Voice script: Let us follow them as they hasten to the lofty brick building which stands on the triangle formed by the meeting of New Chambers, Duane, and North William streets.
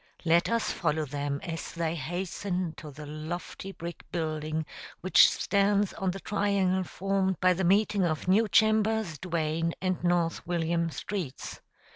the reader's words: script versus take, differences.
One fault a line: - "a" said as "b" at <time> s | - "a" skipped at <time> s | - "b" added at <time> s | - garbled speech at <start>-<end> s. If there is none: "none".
none